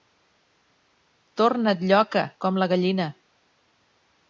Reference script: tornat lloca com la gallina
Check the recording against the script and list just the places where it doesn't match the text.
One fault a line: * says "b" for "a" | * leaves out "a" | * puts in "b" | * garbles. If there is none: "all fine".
all fine